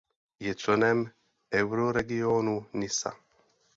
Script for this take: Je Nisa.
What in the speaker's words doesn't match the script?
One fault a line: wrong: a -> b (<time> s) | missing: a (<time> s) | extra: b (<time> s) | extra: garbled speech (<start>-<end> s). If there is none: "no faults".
extra: členem Euroregionu (0.6 s)